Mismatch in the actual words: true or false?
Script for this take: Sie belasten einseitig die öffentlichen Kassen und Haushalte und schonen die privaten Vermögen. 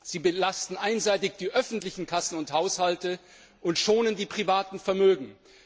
false